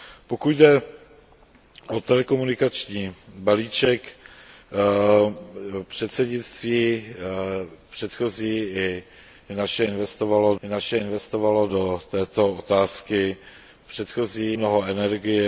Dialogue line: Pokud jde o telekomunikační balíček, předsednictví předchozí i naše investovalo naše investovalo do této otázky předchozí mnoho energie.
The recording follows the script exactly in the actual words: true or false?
true